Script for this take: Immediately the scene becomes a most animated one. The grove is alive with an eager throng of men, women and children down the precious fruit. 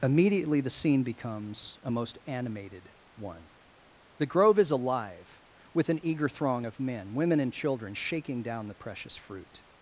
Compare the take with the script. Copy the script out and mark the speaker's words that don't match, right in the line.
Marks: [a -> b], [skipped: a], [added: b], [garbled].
Immediately the scene becomes a most animated one. The grove is alive with an eager throng of men, women and children [added: shaking] down the precious fruit.